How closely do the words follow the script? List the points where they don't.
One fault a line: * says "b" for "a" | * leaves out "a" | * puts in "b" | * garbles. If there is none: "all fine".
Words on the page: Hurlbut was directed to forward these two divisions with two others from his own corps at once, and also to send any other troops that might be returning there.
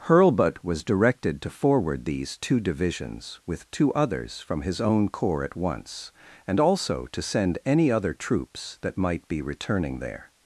all fine